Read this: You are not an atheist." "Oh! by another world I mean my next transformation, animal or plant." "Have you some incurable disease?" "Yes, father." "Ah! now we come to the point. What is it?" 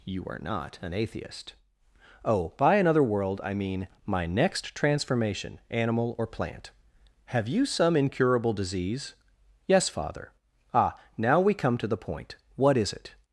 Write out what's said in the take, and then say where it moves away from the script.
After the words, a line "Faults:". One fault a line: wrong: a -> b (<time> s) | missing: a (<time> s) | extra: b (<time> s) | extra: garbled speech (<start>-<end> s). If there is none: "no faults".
You are not an atheist." "Oh! by another world I mean my next transformation, animal or plant." "Have you some incurable disease?" "Yes, father." "Ah! now we come to the point. What is it?"
Faults:
no faults